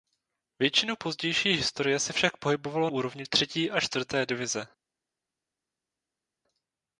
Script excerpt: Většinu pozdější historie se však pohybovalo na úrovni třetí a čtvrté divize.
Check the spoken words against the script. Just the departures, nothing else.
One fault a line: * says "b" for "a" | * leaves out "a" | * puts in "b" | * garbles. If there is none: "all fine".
* leaves out "na"